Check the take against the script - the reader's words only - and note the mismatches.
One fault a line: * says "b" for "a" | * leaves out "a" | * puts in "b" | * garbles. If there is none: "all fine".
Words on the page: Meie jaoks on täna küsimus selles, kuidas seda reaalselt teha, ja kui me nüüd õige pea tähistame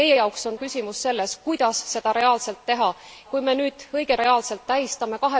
* leaves out "täna"
* leaves out "ja"
* says "reaalselt" for "pea"